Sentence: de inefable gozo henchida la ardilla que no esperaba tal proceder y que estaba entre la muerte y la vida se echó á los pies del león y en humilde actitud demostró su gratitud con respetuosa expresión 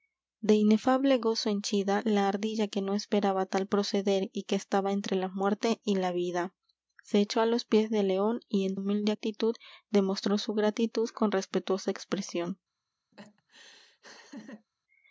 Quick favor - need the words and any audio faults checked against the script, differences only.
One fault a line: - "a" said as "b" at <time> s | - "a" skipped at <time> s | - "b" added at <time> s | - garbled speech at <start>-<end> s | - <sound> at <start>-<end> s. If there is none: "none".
- laugh at 13.1-14.7 s